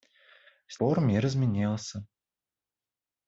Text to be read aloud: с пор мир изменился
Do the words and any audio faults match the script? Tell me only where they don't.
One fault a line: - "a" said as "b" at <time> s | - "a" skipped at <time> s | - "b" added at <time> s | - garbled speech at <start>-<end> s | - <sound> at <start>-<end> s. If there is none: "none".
none